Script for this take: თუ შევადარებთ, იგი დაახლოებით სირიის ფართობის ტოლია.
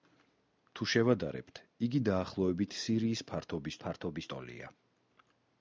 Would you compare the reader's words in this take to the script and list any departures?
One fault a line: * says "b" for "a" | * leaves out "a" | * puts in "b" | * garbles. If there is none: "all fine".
* puts in "ფართობის"